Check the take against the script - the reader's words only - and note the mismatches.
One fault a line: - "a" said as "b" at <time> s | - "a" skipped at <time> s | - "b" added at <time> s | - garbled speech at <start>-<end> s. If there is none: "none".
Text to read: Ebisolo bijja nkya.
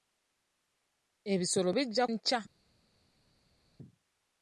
none